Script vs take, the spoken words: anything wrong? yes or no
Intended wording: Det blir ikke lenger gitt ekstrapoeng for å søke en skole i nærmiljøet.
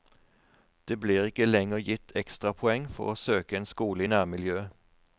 no